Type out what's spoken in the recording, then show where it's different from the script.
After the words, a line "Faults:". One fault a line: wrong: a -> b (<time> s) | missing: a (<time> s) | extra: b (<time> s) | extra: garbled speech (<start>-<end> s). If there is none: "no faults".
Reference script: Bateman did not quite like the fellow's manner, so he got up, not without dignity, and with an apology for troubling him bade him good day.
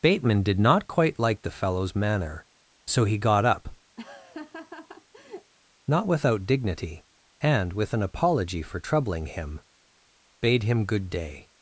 Bateman did not quite like the fellow's manner, so he got up, not without dignity, and with an apology for troubling him bade him good day.
Faults:
no faults